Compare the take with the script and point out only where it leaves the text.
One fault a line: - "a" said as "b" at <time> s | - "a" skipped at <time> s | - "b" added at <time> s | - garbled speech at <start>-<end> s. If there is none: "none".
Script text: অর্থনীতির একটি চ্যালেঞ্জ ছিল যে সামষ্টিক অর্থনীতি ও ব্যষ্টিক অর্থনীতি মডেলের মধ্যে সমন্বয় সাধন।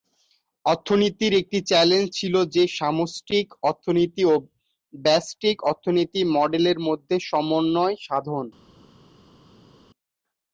none